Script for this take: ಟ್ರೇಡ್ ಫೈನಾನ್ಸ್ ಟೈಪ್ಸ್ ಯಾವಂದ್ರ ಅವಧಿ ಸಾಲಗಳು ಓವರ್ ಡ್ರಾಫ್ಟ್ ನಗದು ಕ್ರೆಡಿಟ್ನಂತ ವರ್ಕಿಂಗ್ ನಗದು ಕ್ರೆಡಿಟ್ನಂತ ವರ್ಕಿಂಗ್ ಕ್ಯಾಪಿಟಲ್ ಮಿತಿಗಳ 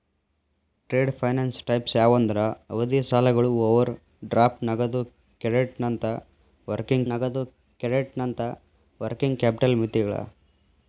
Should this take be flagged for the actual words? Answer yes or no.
no